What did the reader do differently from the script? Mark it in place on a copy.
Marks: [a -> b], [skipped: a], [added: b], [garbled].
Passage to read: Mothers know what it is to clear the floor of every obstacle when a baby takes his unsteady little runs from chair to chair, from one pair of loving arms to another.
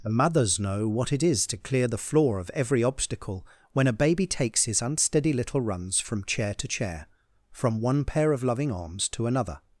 [added: the] Mothers know what it is to clear the floor of every obstacle when a baby takes his unsteady little runs from chair to chair, from one pair of loving arms to another.